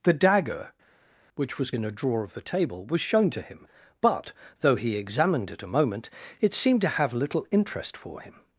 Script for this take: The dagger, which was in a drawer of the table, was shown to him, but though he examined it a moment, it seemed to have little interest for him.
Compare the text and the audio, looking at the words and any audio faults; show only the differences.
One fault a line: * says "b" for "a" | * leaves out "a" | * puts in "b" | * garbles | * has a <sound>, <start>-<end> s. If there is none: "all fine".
all fine